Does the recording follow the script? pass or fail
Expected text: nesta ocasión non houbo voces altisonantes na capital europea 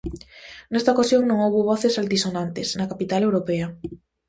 pass